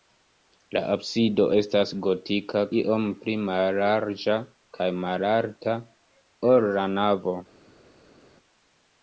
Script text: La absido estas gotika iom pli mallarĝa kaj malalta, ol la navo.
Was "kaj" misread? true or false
false